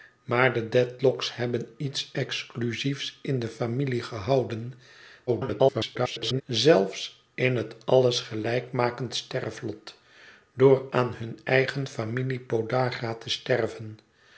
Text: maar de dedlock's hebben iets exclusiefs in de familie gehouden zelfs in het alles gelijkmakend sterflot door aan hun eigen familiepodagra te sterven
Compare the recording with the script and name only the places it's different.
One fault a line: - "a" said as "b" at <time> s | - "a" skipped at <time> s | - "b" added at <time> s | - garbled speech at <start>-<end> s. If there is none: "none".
- garbled speech at 5.3-6.4 s